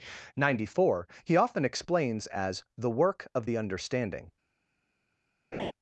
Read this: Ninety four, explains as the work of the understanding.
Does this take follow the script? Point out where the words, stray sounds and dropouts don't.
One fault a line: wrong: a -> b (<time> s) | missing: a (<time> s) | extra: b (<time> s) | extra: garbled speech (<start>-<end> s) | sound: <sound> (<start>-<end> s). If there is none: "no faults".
extra: he often (1.2 s)
sound: laugh (5.5-5.7 s)